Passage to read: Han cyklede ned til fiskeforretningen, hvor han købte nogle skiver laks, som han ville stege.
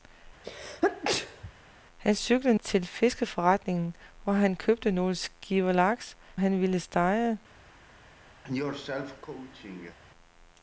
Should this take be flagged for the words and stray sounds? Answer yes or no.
yes